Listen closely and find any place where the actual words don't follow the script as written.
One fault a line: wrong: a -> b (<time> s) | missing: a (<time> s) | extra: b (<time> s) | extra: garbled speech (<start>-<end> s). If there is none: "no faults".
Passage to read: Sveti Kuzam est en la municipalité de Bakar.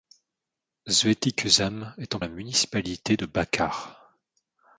no faults